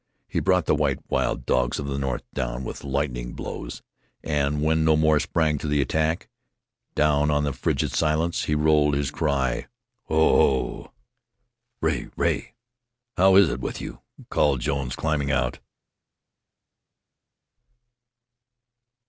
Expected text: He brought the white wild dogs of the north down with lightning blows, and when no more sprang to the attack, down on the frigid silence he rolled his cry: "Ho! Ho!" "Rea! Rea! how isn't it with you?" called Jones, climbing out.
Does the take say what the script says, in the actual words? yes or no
no